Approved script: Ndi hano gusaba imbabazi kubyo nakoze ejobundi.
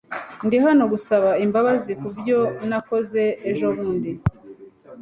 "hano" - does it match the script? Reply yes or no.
yes